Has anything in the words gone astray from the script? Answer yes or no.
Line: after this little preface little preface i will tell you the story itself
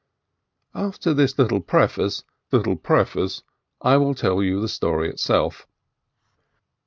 no